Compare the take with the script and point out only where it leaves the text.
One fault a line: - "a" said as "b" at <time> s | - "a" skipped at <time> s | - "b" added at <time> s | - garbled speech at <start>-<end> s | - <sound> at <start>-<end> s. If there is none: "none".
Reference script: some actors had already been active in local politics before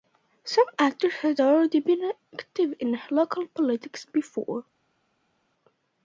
none